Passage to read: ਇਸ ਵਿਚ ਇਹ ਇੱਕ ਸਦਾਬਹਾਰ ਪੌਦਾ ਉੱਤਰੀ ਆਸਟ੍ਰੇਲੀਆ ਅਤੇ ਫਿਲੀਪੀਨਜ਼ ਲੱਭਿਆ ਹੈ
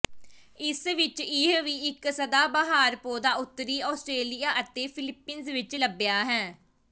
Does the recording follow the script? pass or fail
fail